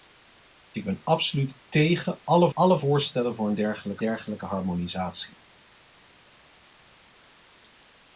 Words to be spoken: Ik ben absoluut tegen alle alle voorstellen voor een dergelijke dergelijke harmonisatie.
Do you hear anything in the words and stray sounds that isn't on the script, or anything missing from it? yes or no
no